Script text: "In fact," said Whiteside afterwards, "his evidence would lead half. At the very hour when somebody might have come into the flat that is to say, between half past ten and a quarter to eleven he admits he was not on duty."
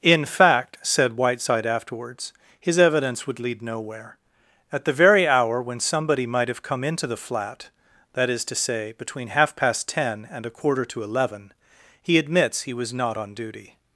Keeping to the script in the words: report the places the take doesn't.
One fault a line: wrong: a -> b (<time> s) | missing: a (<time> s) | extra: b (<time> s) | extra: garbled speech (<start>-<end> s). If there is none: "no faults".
wrong: half -> nowhere (3.6 s)